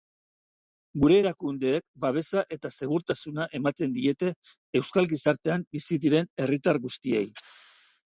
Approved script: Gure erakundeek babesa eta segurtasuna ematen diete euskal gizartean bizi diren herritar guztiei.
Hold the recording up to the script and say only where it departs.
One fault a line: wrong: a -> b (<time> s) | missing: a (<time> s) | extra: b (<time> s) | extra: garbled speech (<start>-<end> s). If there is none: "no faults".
no faults